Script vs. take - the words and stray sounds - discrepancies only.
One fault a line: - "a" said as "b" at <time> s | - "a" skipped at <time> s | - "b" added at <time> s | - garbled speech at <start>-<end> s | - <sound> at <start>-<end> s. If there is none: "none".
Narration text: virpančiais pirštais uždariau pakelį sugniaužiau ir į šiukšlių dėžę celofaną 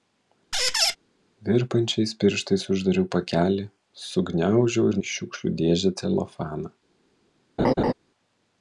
- squeak at 0.5-1.0 s
- laugh at 7.6-7.9 s